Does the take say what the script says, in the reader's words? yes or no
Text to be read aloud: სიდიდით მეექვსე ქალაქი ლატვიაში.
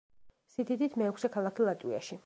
yes